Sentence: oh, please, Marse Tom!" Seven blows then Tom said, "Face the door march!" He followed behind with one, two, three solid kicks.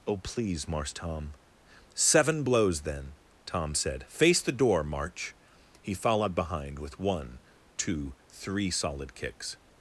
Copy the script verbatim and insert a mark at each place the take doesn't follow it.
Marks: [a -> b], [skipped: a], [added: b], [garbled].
oh, please, Marse Tom!" Seven blows then Tom said, "Face the door march!" He followed behind with one, two, three solid kicks.